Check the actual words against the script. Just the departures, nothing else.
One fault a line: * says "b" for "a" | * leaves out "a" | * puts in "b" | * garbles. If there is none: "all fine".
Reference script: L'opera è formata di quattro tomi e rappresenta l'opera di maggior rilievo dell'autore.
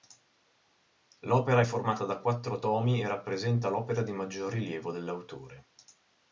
* says "da" for "di"